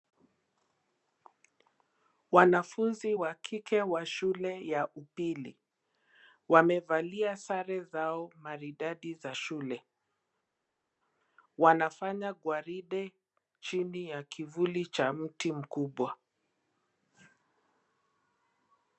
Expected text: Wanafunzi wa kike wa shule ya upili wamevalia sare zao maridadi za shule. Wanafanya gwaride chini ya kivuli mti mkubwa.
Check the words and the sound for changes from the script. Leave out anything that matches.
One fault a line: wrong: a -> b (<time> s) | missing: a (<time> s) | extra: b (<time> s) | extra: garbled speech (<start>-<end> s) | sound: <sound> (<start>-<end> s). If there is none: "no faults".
extra: cha (14.9 s)